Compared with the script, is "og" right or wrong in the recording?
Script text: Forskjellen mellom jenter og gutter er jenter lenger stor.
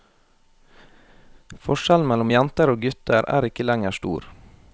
right